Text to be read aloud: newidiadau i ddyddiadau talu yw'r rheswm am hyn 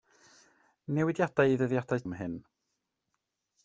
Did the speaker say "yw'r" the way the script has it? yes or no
no